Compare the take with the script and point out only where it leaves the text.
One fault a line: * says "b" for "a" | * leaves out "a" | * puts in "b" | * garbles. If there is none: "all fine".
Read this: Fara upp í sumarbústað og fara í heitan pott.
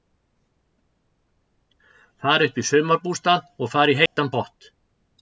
all fine